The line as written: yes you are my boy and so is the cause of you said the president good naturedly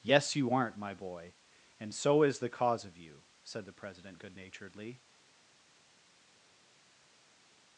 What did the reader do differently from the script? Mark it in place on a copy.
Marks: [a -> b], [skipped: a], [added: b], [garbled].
yes you [are -> aren't] my boy and so is the cause of you said the president good naturedly